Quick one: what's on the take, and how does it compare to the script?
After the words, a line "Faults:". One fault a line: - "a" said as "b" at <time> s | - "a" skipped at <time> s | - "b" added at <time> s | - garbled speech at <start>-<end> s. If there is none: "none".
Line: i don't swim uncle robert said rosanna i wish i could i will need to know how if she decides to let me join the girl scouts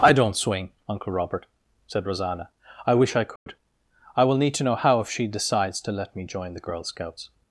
i don't swing uncle robert said rosanna i wish i could i will need to know how if she decides to let me join the girl scouts
Faults:
- "swim" said as "swing" at 0.3 s